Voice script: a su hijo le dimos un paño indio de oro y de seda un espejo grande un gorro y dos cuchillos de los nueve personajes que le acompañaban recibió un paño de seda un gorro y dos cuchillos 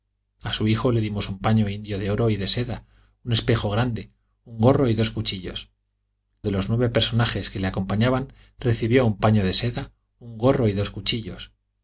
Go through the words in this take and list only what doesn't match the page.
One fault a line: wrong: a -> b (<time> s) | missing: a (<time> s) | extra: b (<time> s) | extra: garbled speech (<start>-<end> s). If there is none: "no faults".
no faults